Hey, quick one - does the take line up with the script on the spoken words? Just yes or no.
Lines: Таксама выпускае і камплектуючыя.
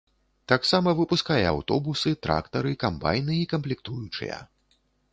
no